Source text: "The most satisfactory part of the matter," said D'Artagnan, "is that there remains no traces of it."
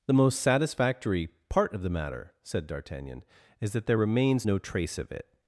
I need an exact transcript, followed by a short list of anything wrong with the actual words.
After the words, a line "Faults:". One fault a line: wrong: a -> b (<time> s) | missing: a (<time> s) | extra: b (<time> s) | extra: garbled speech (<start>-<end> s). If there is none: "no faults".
"The most satisfactory part of the matter," said D'Artagnan, "is that there remains no trace of it."
Faults:
wrong: traces -> trace (4.6 s)